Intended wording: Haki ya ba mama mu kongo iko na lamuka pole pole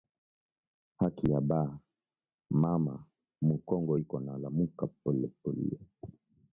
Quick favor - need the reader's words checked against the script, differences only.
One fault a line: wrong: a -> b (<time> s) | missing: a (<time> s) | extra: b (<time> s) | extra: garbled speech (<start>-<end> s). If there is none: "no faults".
no faults